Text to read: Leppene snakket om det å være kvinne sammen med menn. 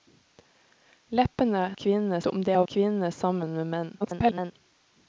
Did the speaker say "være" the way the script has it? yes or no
no